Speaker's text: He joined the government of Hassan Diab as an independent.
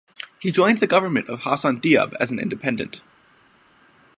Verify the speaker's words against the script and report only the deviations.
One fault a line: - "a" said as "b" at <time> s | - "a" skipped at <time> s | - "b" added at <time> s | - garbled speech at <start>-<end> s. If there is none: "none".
none